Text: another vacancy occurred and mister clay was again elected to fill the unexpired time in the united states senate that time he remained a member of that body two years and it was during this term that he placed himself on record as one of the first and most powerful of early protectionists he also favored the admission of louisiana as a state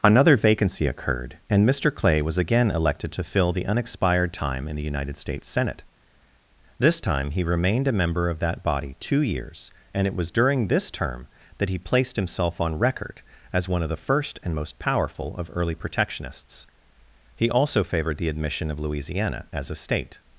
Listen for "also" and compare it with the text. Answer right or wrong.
right